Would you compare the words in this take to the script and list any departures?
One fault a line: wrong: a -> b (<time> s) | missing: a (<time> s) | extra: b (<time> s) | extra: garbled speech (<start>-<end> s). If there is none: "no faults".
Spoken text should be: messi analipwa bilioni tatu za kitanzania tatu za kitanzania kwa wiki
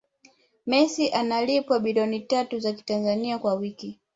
missing: tatu za kitanzania (3.4 s)